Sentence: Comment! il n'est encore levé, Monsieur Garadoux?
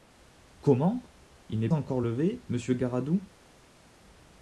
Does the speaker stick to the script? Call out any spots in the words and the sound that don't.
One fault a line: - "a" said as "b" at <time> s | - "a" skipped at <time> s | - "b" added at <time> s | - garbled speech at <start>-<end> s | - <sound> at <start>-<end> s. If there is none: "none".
none